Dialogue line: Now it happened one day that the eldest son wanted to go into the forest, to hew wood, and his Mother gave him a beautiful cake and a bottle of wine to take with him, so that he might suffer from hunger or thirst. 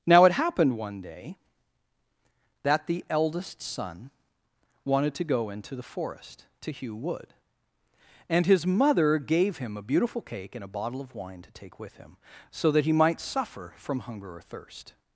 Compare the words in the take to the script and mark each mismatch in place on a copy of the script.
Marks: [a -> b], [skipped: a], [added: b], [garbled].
Now it happened one day that the eldest son wanted to go into the forest, to hew wood, and his Mother gave him a beautiful cake and a bottle of wine to take with him, so that he might suffer from hunger or thirst.